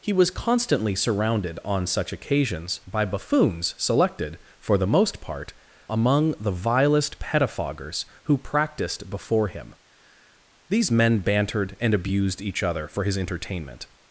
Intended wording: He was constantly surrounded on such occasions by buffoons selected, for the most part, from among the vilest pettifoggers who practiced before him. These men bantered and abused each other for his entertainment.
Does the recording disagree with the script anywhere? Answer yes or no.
yes